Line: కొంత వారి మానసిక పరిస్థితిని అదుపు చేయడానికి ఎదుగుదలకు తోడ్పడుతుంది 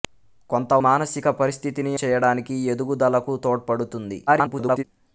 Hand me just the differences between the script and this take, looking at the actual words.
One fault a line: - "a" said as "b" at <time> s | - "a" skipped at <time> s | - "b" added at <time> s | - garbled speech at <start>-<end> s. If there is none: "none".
- "వారి" skipped at 0.7 s
- "అదుపు" skipped at 1.9 s
- garbled speech at 4.3-4.8 s